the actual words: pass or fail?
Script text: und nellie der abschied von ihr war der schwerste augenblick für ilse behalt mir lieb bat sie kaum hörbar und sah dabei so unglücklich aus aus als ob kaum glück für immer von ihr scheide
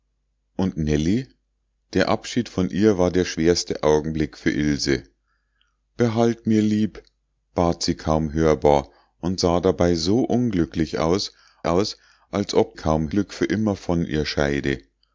pass